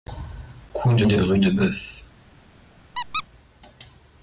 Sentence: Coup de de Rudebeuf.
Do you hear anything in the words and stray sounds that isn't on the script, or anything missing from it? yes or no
yes